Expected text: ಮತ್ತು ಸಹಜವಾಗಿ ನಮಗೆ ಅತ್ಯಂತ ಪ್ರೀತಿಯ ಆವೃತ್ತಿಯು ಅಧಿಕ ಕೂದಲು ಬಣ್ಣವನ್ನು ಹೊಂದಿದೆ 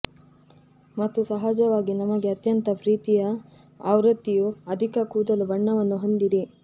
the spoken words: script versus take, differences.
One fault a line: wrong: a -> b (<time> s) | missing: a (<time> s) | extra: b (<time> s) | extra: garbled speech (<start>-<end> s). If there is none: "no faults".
no faults